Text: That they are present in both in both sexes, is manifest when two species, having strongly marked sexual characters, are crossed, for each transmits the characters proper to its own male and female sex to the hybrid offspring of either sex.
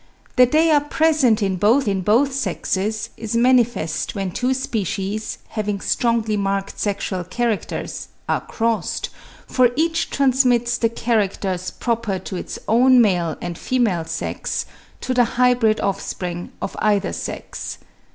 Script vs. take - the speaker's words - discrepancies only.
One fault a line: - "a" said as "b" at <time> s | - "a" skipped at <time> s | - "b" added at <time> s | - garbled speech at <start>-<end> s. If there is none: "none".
none